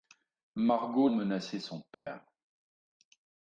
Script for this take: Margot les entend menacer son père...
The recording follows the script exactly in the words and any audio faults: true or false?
false